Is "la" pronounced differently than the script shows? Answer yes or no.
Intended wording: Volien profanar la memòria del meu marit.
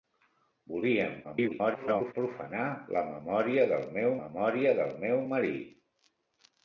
no